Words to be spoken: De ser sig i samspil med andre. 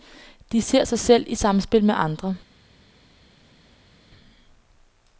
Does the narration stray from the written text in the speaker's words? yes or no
yes